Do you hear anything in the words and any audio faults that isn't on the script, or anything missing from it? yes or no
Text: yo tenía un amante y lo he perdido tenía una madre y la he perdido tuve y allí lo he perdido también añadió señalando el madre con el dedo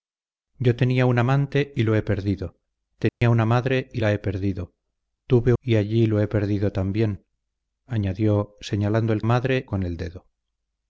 yes